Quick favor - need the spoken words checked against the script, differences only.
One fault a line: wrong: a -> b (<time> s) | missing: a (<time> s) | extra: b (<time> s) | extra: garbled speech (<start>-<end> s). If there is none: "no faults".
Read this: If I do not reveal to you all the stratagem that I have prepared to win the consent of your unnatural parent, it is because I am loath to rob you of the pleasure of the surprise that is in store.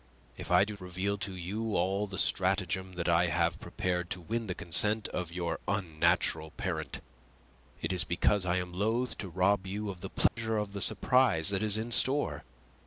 missing: not (0.8 s)